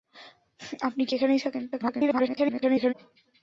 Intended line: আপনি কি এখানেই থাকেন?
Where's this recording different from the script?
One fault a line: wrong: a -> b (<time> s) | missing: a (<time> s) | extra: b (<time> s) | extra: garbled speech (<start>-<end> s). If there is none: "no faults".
extra: garbled speech (1.7-2.9 s)